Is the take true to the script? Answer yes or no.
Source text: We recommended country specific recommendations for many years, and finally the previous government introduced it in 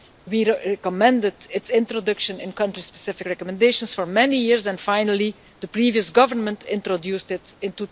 no